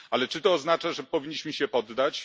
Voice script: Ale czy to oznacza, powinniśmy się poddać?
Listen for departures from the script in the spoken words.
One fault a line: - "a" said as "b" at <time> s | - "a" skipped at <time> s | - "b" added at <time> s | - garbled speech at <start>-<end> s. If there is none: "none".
- "że" added at 0.9 s